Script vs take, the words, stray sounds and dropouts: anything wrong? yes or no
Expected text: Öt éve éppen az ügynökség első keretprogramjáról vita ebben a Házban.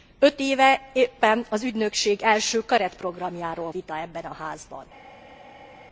no